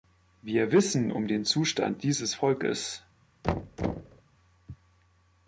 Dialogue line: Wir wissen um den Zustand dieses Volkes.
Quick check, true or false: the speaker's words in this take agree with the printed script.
true